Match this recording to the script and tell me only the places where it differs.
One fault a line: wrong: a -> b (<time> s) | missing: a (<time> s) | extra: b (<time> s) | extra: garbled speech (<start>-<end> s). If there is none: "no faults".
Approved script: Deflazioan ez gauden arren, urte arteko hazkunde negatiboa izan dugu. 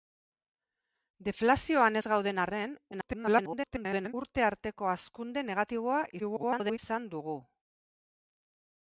extra: garbled speech (2.9-4.1 s)
extra: garbled speech (6.2-6.8 s)